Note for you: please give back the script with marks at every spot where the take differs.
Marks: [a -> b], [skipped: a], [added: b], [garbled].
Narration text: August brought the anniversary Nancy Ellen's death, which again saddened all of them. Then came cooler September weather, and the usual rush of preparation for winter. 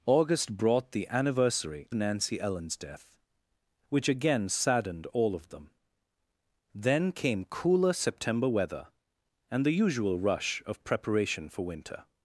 August brought the anniversary Nancy Ellen's death, which again saddened all of them. Then came cooler September weather, and the usual rush of preparation for winter.